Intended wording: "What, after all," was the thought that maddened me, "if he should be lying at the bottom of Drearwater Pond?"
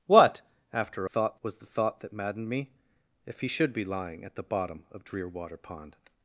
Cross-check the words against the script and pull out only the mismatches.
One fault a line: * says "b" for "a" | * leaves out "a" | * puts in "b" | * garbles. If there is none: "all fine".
* says "thought" for "all"